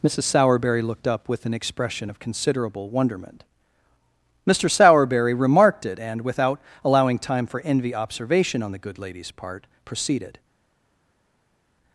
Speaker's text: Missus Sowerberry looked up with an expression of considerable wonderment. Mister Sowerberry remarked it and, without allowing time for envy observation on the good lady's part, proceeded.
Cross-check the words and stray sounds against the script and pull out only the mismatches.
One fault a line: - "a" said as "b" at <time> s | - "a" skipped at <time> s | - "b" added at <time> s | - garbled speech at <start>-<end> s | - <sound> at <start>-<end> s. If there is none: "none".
none